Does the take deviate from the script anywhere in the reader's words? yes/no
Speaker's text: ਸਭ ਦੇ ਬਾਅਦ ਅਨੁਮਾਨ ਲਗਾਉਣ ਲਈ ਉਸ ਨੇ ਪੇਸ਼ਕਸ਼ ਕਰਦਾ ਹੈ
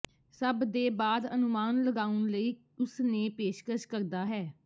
no